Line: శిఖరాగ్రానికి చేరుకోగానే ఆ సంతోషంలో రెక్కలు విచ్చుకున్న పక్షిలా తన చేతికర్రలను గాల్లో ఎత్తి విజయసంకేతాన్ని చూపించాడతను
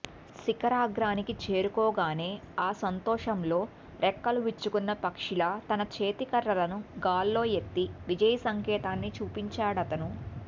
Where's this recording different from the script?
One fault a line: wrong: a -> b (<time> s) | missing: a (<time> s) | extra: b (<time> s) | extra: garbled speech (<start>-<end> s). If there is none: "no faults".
no faults